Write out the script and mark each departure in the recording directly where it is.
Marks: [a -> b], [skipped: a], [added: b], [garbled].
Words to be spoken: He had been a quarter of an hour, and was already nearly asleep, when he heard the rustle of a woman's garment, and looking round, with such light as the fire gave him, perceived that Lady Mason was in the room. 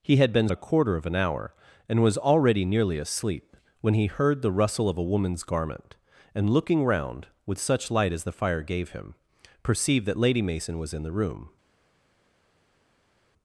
He had been a quarter of an hour, and was already nearly asleep, when he heard the rustle of a woman's garment, and looking round, with such light as the fire gave him, perceived that Lady Mason was in the room.